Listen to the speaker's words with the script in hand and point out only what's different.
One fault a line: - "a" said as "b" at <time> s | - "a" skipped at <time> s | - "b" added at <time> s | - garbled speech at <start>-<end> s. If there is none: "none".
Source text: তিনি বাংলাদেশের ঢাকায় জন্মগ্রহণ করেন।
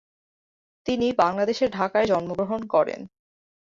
none